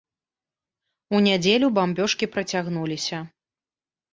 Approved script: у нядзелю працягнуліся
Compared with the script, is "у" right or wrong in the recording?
right